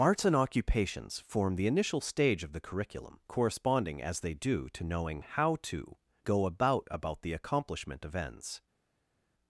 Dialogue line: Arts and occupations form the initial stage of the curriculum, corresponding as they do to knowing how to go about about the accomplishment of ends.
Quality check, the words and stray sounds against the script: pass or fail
pass